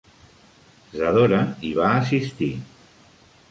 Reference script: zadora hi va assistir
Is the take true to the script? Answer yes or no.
yes